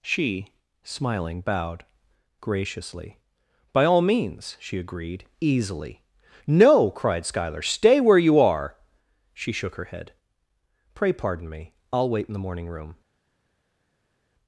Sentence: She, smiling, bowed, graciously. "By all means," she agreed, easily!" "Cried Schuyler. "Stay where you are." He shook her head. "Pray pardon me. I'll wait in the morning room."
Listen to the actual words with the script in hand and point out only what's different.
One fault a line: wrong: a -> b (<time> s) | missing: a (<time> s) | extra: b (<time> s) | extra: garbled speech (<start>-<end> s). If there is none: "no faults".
extra: No (6.5 s)
wrong: He -> She (9.3 s)